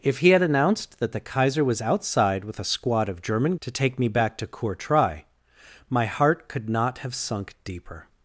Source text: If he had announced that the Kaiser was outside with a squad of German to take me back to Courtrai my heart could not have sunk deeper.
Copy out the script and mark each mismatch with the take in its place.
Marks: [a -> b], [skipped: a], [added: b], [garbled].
If he had announced that the Kaiser was outside with a squad of German to take me back to Courtrai my heart could not have sunk deeper.